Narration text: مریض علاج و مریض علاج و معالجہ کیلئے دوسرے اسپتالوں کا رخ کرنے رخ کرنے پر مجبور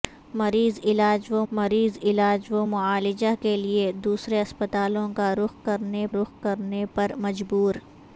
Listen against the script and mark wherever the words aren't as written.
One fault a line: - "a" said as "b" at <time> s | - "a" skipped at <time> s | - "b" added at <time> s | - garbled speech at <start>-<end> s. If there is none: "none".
none